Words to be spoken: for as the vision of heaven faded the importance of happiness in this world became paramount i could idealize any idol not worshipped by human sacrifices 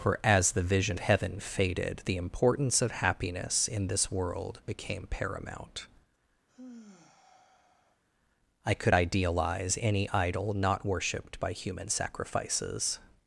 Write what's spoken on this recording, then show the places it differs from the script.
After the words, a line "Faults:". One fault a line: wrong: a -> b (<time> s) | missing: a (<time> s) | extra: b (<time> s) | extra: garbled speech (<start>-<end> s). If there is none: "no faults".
for as the vision heaven faded the importance of happiness in this world became paramount i could idealize any idol not worshipped by human sacrifices
Faults:
missing: of (1.0 s)